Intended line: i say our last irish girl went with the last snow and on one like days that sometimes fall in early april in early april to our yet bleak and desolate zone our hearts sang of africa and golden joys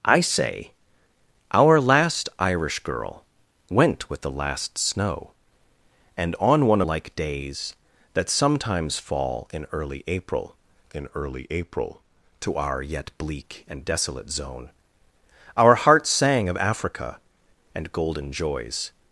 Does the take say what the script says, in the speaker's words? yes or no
yes